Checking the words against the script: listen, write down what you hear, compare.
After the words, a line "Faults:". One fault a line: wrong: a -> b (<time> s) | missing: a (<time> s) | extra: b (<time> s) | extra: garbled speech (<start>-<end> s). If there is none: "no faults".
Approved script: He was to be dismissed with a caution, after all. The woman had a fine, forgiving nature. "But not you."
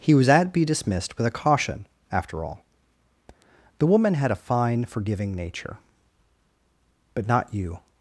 He was at be dismissed with a caution, after all. The woman had a fine, forgiving nature. "But not you."
Faults:
wrong: to -> at (0.3 s)